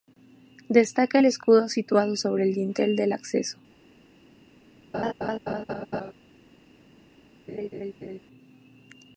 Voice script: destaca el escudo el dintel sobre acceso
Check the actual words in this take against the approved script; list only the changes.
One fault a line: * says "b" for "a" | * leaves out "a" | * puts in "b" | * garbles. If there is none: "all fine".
* puts in "situado sobre"
* says "del" for "sobre"